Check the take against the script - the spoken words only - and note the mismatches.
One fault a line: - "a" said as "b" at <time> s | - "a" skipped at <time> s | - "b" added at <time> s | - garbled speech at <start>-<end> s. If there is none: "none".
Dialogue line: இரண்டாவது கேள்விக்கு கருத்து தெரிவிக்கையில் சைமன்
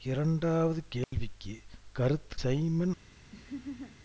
- "தெரிவிக்கையில்" skipped at 2.4 s